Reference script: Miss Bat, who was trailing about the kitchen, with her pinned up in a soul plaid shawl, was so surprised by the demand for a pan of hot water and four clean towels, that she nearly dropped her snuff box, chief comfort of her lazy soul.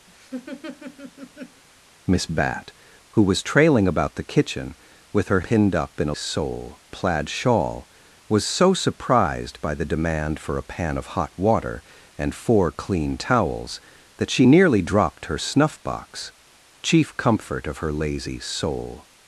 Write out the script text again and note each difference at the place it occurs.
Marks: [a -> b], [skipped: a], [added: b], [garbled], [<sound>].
[laugh] Miss Bat, who was trailing about the kitchen, with her pinned up in a soul plaid shawl, was so surprised by the demand for a pan of hot water and four clean towels, that she nearly dropped her snuff box, chief comfort of her lazy soul.